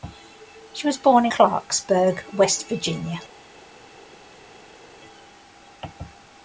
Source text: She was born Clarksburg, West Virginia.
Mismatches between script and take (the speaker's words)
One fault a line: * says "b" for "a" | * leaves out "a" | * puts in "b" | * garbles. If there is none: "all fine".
all fine